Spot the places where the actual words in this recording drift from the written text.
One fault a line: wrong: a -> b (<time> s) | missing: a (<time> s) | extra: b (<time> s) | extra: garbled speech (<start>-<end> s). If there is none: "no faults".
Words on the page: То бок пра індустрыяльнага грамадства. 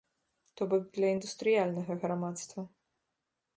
wrong: пра -> для (0.9 s)